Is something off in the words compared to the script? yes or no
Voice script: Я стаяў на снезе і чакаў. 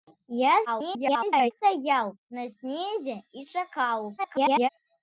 yes